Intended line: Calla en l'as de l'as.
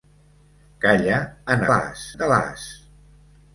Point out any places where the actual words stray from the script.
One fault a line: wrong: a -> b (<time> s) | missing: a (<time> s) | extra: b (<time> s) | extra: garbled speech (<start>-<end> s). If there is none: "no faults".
no faults